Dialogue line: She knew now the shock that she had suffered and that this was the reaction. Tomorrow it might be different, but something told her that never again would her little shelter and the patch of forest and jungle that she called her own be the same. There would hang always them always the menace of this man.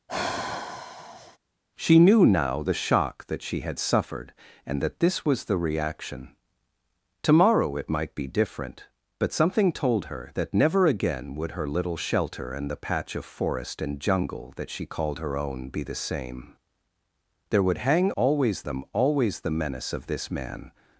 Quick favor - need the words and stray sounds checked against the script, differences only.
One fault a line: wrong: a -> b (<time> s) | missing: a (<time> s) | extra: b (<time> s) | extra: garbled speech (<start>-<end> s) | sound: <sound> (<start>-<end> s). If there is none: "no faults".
sound: sigh (0.1-1.4 s)